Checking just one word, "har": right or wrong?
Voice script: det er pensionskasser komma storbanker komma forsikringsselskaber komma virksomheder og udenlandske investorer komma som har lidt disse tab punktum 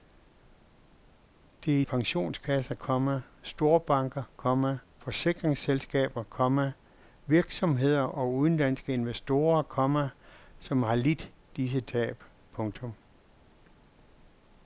right